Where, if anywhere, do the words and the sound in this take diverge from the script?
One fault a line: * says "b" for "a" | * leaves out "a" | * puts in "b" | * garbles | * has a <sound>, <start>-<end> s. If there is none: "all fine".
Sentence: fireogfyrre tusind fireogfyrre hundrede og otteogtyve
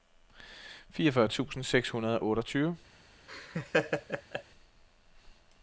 * says "seks" for "fireogfyrre"
* has a laugh, 3.3-4.4 s